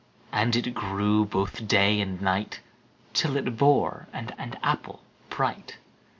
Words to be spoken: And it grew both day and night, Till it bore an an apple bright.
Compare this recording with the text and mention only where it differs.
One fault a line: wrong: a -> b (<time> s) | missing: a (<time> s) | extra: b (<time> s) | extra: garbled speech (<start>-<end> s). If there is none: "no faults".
no faults